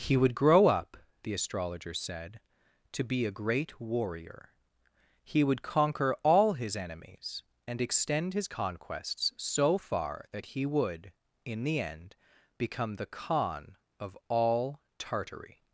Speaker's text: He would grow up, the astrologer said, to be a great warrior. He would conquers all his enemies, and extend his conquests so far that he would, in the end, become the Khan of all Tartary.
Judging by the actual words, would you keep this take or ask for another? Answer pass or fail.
fail